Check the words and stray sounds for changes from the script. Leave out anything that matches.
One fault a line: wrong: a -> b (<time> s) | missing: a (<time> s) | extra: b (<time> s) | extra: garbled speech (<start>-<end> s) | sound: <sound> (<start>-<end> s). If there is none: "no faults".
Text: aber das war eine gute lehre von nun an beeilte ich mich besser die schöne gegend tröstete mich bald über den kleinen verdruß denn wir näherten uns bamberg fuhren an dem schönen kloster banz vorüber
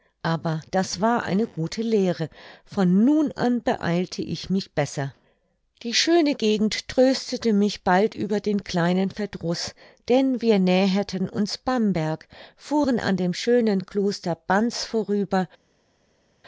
no faults